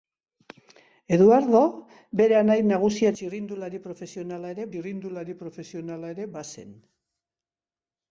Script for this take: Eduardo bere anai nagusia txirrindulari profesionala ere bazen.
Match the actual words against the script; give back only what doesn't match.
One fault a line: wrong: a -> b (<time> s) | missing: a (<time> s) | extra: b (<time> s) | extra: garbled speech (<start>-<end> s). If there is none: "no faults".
extra: txirrindulari profesionala ere (4.7 s)